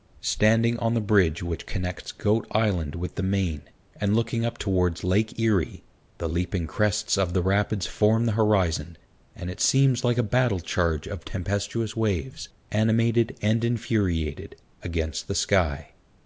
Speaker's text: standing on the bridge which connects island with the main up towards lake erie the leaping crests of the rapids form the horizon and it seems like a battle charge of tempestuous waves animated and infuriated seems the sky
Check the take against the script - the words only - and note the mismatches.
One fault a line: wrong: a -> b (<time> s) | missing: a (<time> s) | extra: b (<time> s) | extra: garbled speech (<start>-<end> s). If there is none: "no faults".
extra: goat (2.1 s)
extra: and looking (3.9 s)
wrong: seems -> against (14.8 s)